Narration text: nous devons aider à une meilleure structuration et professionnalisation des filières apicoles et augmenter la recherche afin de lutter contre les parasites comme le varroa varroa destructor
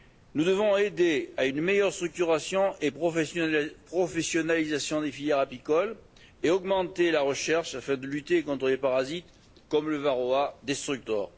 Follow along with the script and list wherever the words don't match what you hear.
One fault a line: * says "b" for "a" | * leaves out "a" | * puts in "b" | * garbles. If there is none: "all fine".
* leaves out "varroa"